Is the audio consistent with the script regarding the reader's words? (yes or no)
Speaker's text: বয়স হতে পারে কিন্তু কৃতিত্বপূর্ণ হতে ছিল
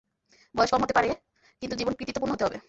no